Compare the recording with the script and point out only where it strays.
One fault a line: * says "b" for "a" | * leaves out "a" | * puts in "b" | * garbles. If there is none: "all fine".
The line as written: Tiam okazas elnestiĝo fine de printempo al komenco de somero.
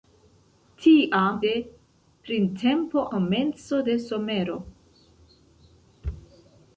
* leaves out "okazas elnestiĝo fine"
* leaves out "al"